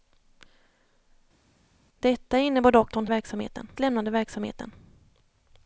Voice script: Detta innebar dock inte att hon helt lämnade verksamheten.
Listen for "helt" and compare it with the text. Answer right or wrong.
wrong